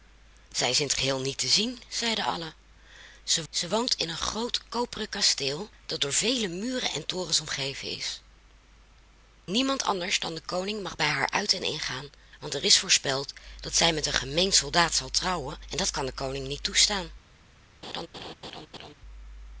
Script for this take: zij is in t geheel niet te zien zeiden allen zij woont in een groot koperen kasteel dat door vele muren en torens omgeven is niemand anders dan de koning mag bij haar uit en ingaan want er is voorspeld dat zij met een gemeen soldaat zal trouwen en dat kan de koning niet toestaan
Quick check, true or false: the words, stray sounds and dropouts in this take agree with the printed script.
false